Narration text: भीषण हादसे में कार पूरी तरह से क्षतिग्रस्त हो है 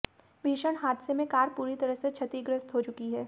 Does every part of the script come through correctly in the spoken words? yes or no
no